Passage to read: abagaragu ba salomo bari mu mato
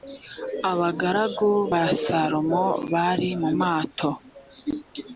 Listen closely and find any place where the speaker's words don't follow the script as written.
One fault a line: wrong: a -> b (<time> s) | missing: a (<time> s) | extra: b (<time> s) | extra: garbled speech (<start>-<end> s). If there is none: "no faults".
no faults